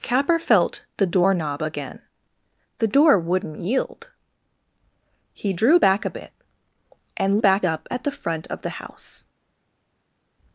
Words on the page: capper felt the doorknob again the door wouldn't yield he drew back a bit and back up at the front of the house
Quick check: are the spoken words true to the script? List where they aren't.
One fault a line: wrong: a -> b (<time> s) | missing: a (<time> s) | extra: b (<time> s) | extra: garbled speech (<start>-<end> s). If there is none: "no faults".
no faults